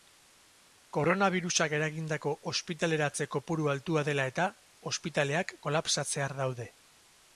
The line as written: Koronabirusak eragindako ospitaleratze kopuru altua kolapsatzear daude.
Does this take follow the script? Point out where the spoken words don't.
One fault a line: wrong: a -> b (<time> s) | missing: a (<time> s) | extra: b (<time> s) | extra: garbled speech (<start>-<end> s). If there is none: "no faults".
extra: dela eta ospitaleak (4.1 s)